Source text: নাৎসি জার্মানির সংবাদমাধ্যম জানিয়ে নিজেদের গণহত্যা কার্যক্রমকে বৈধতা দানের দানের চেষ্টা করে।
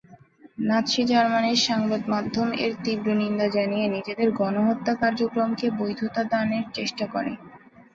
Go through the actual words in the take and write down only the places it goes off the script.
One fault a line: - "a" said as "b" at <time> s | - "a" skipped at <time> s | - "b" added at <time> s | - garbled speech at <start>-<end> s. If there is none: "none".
- "এর তীব্র নিন্দা" added at 2.6 s
- "দানের" skipped at 6.7 s